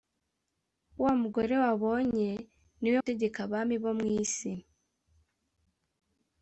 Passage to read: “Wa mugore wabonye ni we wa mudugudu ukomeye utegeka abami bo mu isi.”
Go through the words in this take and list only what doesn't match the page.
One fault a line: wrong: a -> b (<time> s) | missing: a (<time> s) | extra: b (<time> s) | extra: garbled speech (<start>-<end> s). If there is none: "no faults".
missing: wa mudugudu ukomeye (3.0 s)